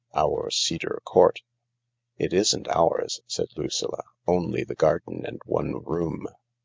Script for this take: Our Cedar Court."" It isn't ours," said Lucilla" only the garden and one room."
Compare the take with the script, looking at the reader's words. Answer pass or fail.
pass